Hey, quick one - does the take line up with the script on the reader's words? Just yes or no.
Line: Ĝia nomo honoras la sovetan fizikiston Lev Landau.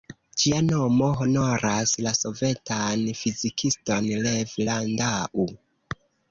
yes